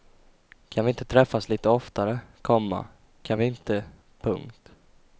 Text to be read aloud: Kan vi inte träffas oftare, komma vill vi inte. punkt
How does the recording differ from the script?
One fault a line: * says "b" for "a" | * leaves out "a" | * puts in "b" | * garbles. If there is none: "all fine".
* puts in "lite"
* says "kan" for "vill"